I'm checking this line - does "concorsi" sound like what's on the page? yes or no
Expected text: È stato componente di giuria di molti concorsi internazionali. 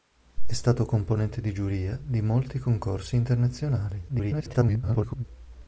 yes